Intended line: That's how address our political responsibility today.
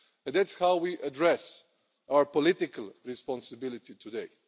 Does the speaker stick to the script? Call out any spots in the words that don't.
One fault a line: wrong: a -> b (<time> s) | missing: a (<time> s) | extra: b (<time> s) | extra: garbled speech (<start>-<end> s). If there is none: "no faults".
extra: we (0.8 s)